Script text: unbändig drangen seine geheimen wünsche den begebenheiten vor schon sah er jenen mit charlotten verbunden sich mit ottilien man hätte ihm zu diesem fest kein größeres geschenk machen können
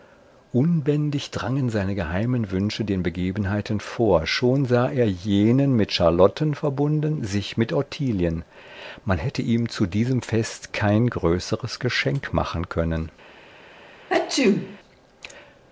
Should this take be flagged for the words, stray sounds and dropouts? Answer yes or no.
yes